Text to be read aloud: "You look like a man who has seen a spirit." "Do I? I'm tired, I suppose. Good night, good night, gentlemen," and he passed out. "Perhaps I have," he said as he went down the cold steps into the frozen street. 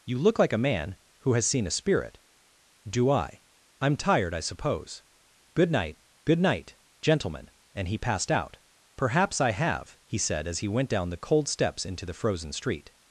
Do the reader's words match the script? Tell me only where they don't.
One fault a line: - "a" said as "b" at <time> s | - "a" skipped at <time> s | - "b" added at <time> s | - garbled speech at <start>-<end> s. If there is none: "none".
none